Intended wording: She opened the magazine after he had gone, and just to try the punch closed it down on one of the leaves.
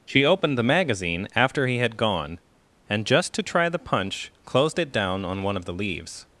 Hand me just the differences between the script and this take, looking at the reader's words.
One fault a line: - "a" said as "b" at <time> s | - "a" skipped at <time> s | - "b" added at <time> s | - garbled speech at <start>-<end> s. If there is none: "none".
none